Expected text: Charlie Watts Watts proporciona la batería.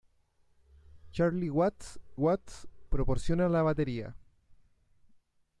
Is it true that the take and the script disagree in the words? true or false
false